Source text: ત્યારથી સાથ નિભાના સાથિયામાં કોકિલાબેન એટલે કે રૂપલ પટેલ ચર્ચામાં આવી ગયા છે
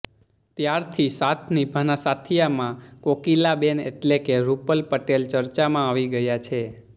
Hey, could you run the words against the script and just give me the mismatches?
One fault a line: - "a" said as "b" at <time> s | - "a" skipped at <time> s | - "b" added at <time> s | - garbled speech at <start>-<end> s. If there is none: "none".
none